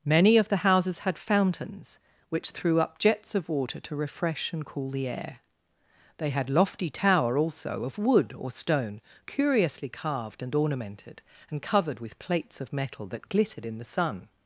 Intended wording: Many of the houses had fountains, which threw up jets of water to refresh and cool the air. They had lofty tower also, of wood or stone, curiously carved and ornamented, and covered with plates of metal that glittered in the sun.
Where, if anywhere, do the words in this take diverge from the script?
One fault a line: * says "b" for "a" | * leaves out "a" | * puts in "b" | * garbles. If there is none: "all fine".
all fine